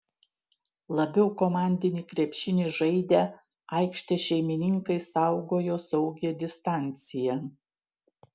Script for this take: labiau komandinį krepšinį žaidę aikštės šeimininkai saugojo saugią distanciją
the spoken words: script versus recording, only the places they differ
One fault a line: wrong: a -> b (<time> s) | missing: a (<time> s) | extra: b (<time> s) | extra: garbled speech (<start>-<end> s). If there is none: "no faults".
no faults